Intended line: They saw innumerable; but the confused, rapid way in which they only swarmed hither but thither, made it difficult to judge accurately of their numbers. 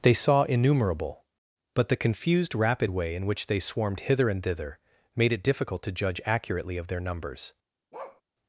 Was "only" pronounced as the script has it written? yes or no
no